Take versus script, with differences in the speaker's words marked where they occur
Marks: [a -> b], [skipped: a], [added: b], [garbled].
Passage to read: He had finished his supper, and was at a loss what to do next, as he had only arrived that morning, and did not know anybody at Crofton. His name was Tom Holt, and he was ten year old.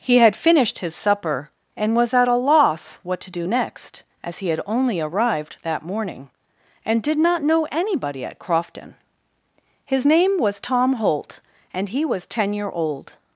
He had finished his supper, and was at a loss what to do next, as he had only arrived that morning, and did not know anybody at Crofton. His name was Tom Holt, and he was ten year old.